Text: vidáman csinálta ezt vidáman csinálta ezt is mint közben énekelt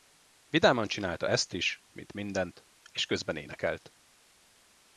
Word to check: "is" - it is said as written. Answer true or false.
false